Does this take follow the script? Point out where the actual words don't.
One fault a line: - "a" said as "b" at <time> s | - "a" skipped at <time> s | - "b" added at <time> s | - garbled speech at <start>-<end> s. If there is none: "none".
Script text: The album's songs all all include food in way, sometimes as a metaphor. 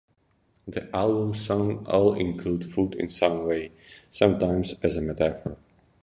- "all" skipped at 2.1 s
- "some" added at 3.1 s